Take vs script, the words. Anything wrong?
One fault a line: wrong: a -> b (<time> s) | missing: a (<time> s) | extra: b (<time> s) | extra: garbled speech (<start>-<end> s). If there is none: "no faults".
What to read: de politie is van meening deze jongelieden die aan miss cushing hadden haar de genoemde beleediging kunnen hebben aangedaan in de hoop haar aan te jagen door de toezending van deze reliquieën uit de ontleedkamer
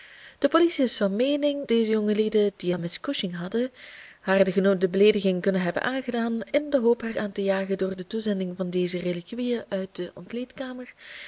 no faults